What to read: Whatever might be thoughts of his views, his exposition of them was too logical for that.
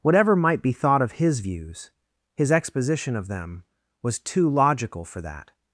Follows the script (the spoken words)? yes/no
no